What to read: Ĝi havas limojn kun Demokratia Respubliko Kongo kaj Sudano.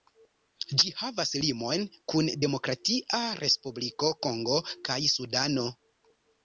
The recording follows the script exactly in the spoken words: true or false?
true